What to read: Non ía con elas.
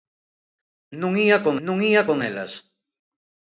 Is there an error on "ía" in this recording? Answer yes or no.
no